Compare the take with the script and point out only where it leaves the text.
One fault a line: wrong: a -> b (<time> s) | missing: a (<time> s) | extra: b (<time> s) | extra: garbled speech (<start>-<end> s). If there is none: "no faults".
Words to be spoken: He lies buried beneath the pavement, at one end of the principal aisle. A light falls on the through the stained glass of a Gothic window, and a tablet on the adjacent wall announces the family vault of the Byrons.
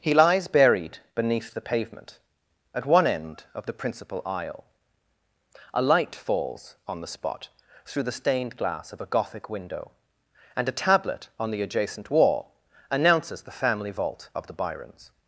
extra: spot (7.1 s)